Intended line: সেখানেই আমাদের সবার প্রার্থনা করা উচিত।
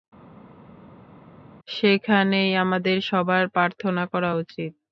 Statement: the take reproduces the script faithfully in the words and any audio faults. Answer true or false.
true